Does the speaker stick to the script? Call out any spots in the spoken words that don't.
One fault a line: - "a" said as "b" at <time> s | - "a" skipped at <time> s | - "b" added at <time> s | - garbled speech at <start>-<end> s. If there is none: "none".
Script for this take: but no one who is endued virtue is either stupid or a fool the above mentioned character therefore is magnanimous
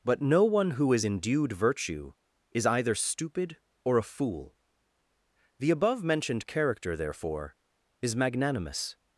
none